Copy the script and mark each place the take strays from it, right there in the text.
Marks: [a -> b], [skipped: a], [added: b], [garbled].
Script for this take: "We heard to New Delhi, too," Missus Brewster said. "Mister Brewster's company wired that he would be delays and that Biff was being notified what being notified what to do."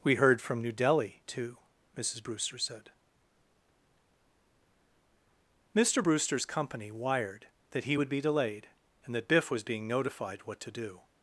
"We heard [to -> from] New Delhi, too," Missus Brewster said. "Mister Brewster's company wired that he would be [delays -> delayed] and that Biff was being notified what [skipped: being notified what] to do."